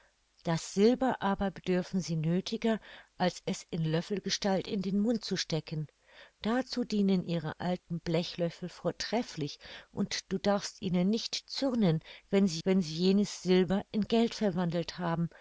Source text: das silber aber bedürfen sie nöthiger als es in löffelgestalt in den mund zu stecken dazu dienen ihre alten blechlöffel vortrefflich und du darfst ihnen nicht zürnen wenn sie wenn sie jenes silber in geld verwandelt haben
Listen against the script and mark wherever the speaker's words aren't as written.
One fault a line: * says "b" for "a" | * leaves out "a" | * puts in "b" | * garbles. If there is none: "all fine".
all fine